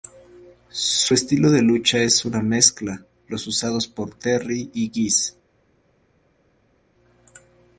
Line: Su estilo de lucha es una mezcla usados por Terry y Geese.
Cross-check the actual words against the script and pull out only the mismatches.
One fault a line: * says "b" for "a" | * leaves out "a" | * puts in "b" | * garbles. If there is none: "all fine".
* puts in "los"